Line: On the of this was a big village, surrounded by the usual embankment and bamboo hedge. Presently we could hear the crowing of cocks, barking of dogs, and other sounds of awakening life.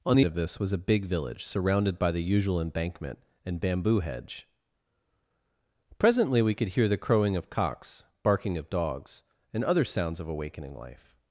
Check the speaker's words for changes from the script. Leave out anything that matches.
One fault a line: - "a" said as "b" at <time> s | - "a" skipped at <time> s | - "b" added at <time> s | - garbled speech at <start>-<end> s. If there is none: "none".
none